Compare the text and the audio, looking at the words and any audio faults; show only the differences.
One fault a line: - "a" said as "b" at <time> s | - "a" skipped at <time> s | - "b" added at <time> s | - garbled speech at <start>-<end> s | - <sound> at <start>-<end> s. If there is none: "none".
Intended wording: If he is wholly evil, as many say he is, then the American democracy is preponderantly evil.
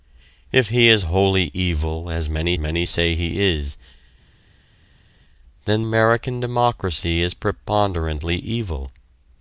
- "many" added at 2.6 s
- "the" skipped at 5.8 s